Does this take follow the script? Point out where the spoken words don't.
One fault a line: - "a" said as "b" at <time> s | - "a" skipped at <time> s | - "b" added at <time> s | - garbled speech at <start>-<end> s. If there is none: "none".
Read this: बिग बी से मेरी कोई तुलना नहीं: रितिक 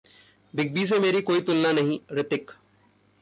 none